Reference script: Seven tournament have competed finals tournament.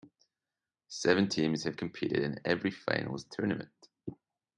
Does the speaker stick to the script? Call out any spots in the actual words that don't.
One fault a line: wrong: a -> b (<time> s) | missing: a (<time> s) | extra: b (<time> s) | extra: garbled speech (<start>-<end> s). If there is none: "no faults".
wrong: tournament -> teams (1.3 s)
extra: in every (2.2 s)